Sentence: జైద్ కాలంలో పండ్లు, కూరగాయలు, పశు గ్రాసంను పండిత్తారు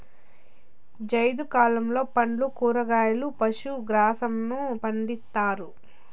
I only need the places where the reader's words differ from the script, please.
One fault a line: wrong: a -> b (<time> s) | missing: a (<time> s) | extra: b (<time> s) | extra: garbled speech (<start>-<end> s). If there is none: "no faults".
no faults